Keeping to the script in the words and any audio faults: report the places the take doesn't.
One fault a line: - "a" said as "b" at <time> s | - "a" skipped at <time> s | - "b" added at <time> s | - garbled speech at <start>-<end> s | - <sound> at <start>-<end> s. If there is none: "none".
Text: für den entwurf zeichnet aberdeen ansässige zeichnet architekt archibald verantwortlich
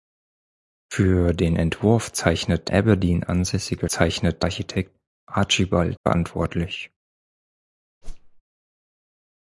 - whoosh at 8.0-8.4 s